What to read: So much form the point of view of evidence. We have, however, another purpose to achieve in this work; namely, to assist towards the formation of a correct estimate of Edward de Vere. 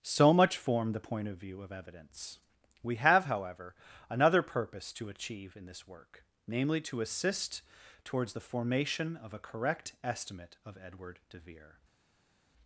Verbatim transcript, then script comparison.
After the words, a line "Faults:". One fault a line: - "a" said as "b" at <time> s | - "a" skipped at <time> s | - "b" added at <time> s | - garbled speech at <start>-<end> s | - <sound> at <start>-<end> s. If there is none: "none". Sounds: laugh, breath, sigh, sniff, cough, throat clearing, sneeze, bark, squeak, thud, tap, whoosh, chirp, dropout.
So much form the point of view of evidence. We have, however, another purpose to achieve in this work; namely, to assist towards the formation of a correct estimate of Edward de Vere.
Faults:
none